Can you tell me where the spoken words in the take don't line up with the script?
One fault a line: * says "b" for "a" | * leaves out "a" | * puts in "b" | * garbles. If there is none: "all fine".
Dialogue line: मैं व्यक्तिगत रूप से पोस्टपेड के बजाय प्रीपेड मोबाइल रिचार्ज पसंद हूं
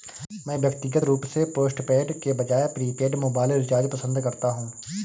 * puts in "करता"